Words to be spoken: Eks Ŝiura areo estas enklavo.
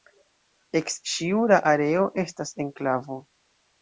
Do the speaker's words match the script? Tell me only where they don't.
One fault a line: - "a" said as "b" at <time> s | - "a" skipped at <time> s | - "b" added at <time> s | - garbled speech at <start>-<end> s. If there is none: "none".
none